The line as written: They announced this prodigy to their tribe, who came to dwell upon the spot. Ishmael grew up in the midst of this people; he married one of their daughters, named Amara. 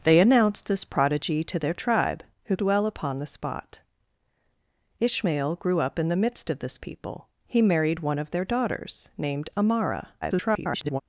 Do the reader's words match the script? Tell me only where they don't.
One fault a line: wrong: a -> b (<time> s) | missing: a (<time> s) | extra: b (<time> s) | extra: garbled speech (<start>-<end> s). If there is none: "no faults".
missing: came to (2.6 s)
extra: garbled speech (10.2-11.0 s)